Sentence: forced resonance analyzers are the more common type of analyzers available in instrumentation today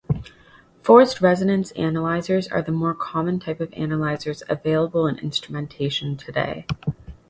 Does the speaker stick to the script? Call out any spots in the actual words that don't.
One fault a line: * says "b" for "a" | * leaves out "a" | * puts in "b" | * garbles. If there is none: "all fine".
all fine